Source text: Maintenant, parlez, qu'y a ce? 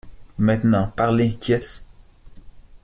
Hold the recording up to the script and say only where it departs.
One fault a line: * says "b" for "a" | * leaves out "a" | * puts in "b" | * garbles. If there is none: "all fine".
all fine